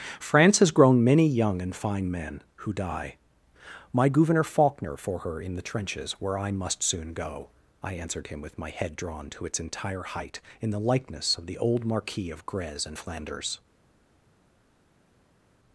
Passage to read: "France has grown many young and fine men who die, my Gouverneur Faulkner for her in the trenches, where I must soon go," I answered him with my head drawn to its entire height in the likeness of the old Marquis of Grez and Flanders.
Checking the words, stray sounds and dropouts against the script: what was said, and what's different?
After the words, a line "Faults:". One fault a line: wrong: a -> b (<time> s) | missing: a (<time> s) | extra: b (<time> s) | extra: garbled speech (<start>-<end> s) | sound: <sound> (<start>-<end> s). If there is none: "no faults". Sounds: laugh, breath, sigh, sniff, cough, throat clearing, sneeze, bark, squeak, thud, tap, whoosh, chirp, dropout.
"France has grown many young and fine men who die, my Gouverneur Faulkner for her in the trenches, where I must soon go," I answered him with my head drawn to its entire height in the likeness of the old Marquis of Grez and Flanders.
Faults:
no faults